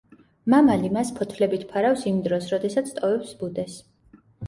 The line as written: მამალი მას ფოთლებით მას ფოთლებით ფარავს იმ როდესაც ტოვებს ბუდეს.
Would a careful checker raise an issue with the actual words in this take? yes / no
yes